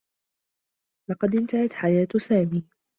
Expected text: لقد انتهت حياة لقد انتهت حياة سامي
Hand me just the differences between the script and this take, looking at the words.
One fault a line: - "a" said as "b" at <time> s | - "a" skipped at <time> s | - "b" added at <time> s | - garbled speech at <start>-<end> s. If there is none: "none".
- "لقد انتهت حياة" skipped at 2.1 s